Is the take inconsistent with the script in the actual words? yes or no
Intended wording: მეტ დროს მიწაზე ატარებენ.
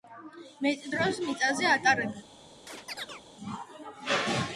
no